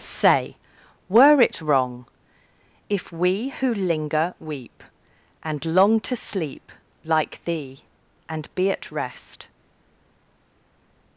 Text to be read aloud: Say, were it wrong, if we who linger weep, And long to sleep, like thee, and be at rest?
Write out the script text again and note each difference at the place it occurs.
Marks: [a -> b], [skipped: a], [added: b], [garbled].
Say, were it wrong, if we who linger weep, And long to sleep, like thee, and be at rest?